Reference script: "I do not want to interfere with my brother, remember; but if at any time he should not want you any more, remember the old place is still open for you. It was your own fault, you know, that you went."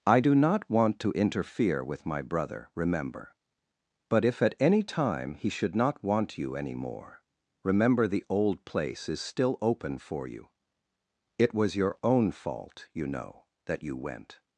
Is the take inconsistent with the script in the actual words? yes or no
no